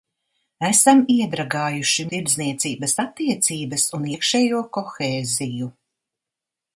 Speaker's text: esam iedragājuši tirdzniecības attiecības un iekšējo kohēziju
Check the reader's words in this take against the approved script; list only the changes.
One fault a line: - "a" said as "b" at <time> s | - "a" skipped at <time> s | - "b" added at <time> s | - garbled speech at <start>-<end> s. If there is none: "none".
none